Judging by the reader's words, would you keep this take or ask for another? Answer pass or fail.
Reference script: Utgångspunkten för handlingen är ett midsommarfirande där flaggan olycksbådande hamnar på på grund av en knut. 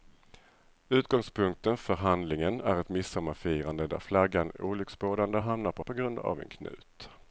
pass